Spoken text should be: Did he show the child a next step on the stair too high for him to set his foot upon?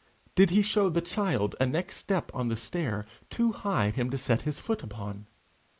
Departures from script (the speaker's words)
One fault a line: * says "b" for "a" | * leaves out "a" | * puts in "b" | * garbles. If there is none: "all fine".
* leaves out "for"